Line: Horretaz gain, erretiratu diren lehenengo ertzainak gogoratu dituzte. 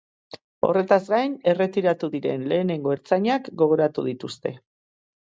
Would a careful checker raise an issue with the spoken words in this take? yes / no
no